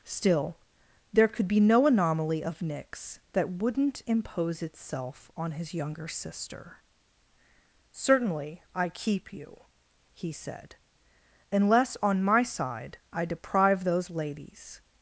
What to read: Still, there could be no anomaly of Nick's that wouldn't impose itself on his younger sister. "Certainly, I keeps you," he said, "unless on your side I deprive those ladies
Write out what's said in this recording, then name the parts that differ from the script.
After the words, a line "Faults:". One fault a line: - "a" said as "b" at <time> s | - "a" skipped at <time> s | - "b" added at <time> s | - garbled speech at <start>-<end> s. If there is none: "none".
Still, there could be no anomaly of Nick's that wouldn't impose itself on his younger sister. "Certainly, I keep you," he said, "unless on my side I deprive those ladies
Faults:
- "keeps" said as "keep" at 8.9 s
- "your" said as "my" at 12.2 s